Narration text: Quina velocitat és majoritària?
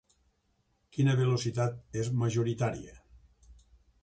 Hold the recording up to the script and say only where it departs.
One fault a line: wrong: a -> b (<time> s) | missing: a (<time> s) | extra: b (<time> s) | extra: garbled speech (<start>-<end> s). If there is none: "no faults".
no faults